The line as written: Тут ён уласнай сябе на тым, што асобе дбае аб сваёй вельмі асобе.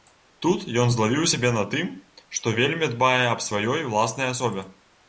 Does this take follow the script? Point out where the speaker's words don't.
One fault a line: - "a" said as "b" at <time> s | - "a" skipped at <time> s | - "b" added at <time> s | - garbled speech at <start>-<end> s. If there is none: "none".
- "уласнай" said as "злавіў" at 0.9 s
- "асобе" said as "вельмі" at 2.6 s
- "вельмі" said as "уласнай" at 3.9 s